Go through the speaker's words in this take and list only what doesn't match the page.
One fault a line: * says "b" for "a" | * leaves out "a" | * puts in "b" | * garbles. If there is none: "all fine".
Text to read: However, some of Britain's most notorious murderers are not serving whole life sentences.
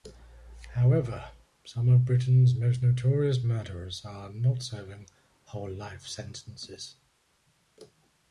all fine